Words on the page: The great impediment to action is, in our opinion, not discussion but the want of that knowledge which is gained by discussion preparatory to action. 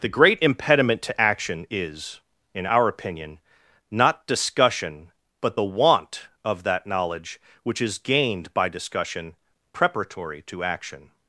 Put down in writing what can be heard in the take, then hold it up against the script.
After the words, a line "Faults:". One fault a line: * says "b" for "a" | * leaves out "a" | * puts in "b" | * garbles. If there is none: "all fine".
The great impediment to action is, in our opinion, not discussion but the want of that knowledge which is gained by discussion preparatory to action.
Faults:
all fine